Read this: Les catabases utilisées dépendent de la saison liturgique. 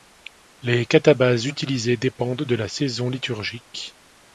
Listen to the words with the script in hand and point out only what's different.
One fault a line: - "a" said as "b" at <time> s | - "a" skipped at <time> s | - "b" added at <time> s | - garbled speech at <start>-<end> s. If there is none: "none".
none